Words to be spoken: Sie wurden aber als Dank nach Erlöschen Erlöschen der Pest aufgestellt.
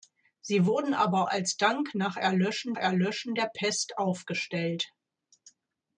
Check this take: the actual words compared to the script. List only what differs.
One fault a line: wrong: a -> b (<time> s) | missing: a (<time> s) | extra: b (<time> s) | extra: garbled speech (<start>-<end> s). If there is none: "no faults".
no faults